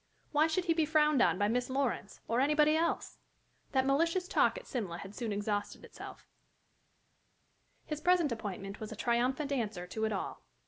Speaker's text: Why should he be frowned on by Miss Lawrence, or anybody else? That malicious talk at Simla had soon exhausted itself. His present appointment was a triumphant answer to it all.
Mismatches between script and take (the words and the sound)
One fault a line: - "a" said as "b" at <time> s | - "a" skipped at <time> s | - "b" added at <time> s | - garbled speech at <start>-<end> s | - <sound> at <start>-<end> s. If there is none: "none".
none